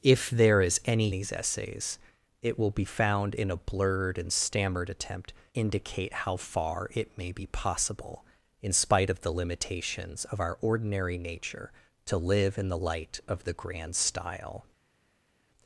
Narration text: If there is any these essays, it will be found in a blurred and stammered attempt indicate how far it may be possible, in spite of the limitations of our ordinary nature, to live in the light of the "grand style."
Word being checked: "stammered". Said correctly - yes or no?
yes